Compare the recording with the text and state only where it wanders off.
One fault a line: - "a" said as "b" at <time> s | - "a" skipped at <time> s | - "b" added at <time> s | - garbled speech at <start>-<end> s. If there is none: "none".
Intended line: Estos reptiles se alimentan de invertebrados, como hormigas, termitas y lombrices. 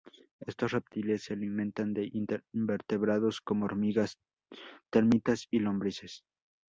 none